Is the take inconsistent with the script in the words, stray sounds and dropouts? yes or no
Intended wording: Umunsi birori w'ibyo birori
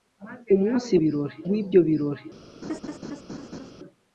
yes